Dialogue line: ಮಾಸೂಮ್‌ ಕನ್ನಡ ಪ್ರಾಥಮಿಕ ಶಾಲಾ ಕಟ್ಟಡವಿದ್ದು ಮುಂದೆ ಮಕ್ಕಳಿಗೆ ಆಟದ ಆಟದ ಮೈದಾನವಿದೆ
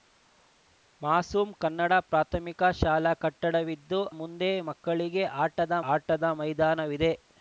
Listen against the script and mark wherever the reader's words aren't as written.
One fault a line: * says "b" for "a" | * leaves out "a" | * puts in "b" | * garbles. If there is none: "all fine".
all fine